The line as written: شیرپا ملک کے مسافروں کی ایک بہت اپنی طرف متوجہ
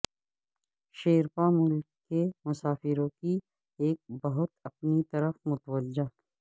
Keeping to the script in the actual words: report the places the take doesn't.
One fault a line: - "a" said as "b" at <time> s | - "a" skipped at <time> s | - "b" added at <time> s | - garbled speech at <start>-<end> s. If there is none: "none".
none